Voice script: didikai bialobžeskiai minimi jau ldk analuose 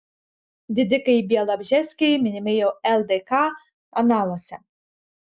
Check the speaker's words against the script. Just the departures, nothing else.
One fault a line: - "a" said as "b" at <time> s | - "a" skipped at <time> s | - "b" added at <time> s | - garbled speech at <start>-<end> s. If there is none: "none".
none